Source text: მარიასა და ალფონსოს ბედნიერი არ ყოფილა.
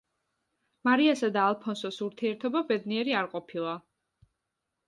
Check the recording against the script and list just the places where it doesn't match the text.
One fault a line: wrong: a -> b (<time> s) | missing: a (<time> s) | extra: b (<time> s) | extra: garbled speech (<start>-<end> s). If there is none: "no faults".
extra: ურთიერთობა (2.1 s)